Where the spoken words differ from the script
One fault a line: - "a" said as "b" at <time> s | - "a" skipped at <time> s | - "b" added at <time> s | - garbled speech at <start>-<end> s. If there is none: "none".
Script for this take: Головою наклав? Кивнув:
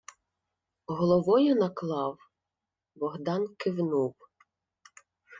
- "Богдан" added at 2.9 s